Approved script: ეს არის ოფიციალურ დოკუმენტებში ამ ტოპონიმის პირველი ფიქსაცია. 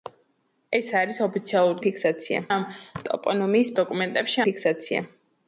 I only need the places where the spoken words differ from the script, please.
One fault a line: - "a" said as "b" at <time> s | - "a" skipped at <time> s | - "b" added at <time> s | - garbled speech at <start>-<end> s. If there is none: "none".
- "დოკუმენტებში" said as "ფიქსაცია" at 1.9 s
- "პირველი" said as "დოკუმენტებში" at 3.8 s